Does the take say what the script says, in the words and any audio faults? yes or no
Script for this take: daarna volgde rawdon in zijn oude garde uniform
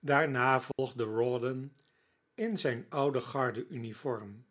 no